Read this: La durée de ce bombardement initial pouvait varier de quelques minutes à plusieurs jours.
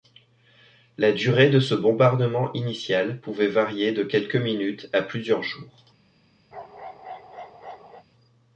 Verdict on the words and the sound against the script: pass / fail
fail